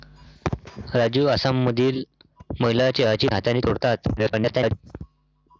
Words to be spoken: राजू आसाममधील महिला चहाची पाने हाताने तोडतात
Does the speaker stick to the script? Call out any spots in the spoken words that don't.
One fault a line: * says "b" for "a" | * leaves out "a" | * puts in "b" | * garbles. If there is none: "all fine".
* leaves out "पाने"
* garbles